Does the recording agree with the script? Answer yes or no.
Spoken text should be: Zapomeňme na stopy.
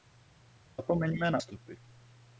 yes